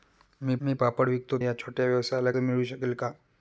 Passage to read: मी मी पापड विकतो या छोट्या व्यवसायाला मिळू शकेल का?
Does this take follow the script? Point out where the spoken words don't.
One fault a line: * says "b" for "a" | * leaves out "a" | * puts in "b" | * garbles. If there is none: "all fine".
all fine